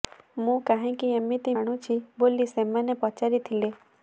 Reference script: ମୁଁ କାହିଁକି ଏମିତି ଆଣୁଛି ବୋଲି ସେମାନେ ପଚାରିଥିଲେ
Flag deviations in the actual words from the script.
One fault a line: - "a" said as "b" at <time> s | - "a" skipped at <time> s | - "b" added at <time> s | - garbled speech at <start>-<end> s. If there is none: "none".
none